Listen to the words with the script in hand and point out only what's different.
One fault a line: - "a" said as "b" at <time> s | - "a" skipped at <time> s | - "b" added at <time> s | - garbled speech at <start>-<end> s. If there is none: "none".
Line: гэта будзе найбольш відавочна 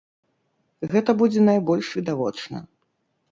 none